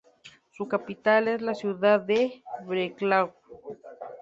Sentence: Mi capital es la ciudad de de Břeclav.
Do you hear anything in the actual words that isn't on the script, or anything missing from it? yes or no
yes